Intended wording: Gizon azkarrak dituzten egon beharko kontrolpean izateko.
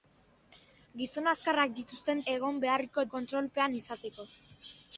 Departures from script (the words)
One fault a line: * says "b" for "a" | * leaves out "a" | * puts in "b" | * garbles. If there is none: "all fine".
all fine